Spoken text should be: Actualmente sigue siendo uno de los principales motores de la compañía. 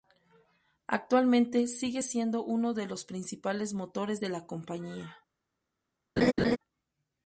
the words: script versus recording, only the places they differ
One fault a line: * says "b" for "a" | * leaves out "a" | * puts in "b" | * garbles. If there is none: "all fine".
all fine